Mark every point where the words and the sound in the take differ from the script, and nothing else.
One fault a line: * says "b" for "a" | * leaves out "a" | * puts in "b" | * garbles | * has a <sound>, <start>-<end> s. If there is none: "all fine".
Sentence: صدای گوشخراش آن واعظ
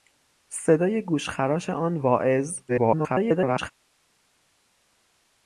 * garbles